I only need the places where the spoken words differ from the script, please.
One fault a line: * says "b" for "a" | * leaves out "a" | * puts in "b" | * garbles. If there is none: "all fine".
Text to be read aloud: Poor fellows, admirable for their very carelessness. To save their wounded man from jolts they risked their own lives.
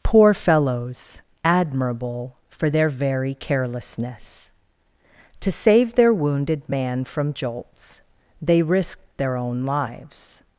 all fine